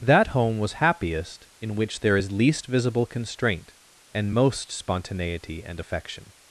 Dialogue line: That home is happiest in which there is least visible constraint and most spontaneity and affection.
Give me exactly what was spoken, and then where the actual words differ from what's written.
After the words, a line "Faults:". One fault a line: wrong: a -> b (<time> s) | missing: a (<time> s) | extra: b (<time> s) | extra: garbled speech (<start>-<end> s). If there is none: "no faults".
That home was happiest in which there is least visible constraint and most spontaneity and affection.
Faults:
wrong: is -> was (0.6 s)